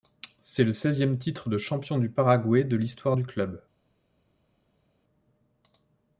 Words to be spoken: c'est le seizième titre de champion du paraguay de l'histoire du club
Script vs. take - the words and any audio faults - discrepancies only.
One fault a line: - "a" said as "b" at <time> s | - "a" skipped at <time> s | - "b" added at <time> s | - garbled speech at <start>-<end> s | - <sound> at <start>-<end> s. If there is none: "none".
none